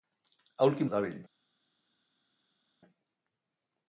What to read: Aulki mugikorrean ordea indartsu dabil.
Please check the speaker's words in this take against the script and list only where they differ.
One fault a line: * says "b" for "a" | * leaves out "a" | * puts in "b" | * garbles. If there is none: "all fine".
* leaves out "mugikorrean ordea indartsu"